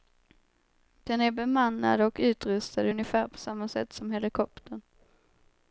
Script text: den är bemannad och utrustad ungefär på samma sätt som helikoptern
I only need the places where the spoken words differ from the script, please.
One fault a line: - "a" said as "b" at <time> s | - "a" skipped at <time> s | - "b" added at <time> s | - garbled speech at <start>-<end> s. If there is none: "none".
none